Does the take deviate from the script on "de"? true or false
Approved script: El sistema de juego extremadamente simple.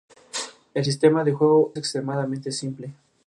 false